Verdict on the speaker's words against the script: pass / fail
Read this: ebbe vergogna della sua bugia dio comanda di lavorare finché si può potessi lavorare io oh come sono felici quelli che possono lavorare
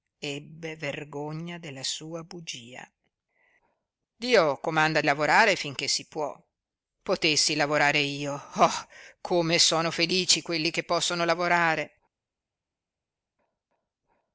fail